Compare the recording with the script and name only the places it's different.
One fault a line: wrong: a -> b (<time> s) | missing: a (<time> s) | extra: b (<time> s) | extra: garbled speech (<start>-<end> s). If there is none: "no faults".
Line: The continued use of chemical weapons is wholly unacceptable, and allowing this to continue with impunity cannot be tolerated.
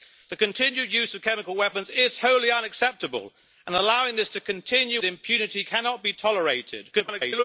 missing: with (5.0 s)
extra: garbled speech (6.9-7.4 s)